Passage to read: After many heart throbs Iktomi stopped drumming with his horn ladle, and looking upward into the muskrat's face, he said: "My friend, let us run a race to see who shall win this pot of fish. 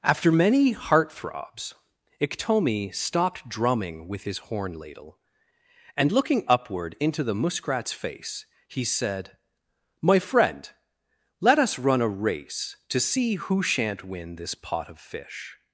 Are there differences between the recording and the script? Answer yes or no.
yes